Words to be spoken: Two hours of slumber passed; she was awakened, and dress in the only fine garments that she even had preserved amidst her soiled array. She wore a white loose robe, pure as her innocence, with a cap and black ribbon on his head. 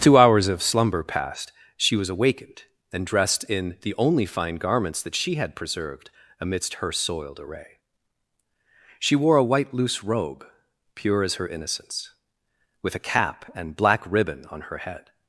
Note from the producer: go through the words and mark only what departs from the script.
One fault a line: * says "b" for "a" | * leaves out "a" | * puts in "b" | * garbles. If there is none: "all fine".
* says "dressed" for "dress"
* leaves out "even"
* says "her" for "his"